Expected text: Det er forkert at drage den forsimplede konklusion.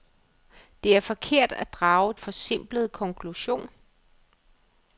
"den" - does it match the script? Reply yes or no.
no